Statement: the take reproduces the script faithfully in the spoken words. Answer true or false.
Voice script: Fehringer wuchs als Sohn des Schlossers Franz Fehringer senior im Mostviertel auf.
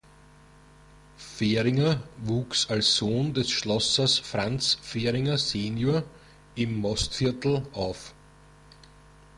true